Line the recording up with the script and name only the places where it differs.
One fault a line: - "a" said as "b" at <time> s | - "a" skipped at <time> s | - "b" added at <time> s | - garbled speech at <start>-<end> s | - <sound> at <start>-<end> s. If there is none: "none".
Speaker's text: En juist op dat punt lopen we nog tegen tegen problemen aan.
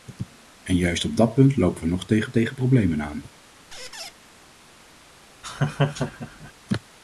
- squeak at 3.7-4.1 s
- laugh at 5.4-6.5 s